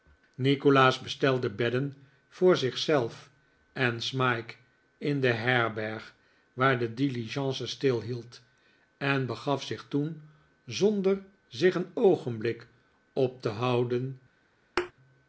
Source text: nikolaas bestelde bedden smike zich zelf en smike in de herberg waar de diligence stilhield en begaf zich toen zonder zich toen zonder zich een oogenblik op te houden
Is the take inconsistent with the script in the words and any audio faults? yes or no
yes